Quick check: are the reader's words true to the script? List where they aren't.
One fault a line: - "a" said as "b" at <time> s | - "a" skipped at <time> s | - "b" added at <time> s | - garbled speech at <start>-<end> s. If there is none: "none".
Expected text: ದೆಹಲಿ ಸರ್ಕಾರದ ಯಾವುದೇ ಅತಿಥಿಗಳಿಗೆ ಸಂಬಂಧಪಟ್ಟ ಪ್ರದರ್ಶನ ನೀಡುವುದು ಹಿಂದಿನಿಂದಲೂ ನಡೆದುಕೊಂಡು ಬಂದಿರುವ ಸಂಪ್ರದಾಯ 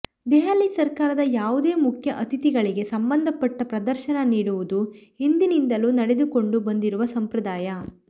- "ಮುಖ್ಯ" added at 1.8 s